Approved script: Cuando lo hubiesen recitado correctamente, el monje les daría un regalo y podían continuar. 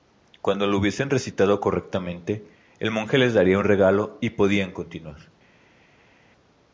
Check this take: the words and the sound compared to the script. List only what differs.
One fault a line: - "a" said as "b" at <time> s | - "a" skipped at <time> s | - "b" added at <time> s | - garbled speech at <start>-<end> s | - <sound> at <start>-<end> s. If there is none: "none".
none